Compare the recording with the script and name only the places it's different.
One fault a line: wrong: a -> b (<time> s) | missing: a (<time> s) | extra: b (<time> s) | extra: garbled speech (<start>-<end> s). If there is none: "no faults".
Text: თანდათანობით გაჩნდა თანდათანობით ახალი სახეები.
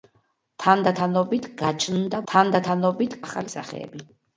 no faults